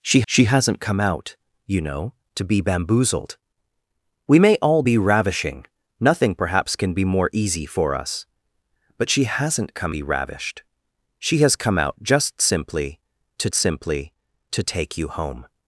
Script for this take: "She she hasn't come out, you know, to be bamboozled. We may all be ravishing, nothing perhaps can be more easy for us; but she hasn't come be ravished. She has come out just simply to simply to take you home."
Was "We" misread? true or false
false